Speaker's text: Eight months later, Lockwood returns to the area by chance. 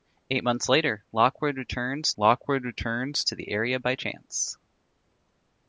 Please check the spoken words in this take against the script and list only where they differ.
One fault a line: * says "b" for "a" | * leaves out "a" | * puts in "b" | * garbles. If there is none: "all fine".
* puts in "Lockwood returns"